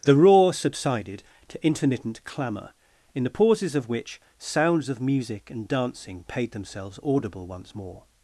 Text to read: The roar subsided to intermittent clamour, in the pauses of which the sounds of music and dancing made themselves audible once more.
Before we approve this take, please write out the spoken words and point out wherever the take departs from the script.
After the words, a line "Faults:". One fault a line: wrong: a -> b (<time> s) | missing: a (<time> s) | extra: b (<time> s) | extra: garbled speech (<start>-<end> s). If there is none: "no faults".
The roar subsided to intermittent clamour, in the pauses of which sounds of music and dancing paid themselves audible once more.
Faults:
missing: the (4.2 s)
wrong: made -> paid (6.2 s)